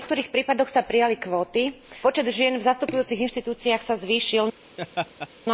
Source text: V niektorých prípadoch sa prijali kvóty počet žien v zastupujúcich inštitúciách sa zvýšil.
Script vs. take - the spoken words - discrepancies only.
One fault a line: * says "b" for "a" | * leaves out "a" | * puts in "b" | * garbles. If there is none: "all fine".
all fine